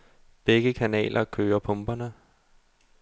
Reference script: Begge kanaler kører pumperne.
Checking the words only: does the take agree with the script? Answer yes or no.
yes